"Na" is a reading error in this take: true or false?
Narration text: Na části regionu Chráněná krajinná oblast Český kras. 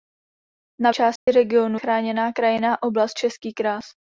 false